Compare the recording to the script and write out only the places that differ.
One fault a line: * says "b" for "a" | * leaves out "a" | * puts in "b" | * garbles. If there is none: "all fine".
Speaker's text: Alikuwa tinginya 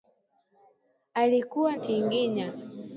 all fine